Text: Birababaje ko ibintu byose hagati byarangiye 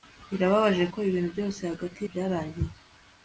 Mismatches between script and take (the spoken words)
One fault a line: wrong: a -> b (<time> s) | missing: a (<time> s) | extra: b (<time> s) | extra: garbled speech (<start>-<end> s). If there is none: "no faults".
no faults